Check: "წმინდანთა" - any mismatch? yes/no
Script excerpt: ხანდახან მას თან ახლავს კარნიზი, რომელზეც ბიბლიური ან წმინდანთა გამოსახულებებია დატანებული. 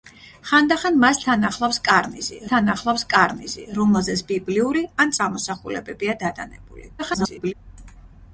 yes